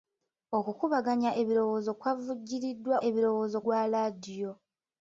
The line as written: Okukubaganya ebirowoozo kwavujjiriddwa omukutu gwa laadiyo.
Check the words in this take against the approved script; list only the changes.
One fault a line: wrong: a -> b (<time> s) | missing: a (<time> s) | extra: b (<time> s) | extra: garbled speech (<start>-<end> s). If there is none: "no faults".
wrong: omukutu -> ebirowoozo (3.1 s)